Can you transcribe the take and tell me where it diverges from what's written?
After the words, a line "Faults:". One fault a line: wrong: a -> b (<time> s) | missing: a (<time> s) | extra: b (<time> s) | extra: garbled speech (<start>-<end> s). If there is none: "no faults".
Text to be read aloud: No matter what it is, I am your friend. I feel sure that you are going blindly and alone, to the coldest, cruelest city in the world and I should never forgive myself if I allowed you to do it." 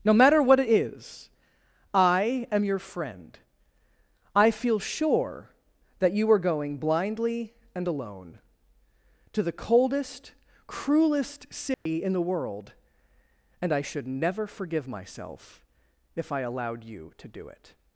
No matter what it is, I am your friend. I feel sure that you are going blindly and alone, to the coldest, cruelest city in the world and I should never forgive myself if I allowed you to do it."
Faults:
no faults